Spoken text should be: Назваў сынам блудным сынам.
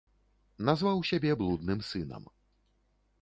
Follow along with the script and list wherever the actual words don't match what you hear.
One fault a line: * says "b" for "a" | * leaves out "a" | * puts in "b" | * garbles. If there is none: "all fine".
* says "сябе" for "сынам"